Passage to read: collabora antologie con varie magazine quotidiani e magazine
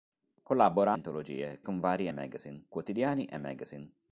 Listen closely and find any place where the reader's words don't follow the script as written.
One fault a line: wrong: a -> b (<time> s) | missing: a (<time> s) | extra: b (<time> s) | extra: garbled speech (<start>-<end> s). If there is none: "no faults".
no faults